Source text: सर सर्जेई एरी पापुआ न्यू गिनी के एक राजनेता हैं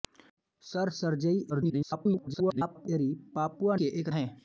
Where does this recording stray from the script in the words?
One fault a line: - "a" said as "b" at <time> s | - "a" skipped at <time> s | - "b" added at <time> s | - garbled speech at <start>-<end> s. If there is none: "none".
- garbled speech at 1.5-2.9 s
- "न्यू गिनी" skipped at 3.8 s
- "राजनेता" skipped at 4.1 s